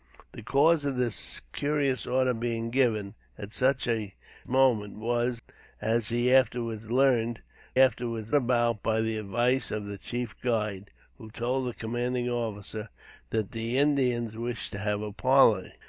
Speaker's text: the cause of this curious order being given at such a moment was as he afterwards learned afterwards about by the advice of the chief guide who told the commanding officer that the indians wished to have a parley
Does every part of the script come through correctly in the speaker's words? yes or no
yes